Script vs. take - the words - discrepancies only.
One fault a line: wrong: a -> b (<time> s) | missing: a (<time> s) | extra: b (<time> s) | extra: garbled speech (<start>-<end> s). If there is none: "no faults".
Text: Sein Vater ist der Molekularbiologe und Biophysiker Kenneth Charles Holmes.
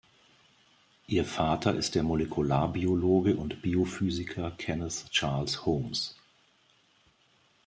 wrong: Sein -> Ihr (1.1 s)